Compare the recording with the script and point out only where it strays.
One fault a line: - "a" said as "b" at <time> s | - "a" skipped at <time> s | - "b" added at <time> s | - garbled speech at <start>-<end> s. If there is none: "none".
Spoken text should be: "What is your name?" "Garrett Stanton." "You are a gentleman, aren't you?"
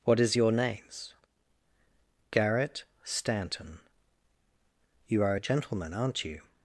- "name" said as "names" at 0.5 s